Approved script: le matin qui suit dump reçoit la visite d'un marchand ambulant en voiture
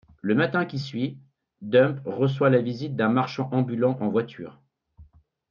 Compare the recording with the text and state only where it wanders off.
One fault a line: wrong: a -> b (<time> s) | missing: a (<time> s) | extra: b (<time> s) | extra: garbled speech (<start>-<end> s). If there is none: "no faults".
no faults